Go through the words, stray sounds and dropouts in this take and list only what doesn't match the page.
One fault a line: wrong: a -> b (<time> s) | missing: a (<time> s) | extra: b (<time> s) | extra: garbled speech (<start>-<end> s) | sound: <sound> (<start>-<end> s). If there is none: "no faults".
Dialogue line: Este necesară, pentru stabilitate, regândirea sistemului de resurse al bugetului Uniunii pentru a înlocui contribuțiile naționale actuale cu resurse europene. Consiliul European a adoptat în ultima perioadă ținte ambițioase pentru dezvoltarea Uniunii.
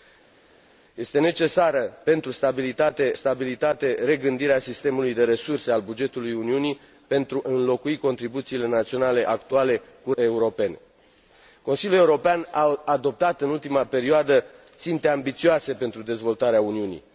extra: stabilitate (3.1 s)
missing: a (7.4 s)
missing: resurse (10.1 s)